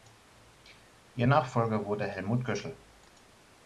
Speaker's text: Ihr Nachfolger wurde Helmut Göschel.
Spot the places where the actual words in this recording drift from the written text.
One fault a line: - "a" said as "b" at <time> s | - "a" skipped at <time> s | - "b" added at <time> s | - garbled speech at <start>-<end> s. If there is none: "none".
none